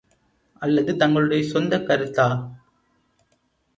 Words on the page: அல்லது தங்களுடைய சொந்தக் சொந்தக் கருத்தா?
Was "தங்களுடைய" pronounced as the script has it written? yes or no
yes